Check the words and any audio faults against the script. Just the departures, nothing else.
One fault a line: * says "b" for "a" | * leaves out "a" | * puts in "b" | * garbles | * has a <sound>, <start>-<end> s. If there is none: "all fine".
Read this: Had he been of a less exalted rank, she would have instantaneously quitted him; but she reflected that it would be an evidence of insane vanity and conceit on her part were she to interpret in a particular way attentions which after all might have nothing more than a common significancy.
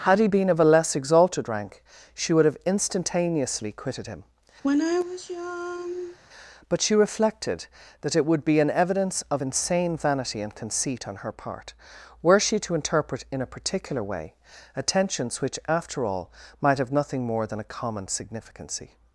* has a sigh, 4.6-6.2 s